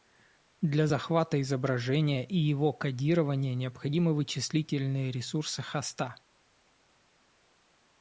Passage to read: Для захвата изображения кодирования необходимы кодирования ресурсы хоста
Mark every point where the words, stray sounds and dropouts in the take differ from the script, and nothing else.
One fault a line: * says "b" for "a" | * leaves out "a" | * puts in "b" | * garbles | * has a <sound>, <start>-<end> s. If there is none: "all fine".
* puts in "и его"
* says "вычислительные" for "кодирования"